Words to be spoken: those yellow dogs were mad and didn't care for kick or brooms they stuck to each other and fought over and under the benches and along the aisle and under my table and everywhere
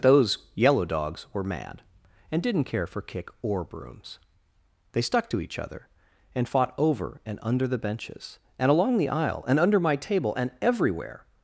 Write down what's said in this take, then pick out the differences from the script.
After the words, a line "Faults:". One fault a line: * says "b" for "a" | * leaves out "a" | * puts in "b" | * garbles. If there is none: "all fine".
those yellow dogs were mad and didn't care for kick or brooms they stuck to each other and fought over and under the benches and along the aisle and under my table and everywhere
Faults:
all fine